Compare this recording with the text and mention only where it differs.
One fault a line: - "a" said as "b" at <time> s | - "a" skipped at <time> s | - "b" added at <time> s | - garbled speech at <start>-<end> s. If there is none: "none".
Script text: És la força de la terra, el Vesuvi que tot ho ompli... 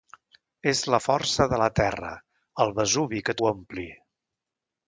- "tot" skipped at 3.4 s